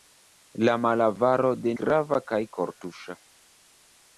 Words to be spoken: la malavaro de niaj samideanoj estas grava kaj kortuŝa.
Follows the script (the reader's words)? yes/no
no